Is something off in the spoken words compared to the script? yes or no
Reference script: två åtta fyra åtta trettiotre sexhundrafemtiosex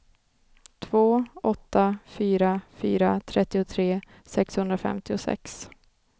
yes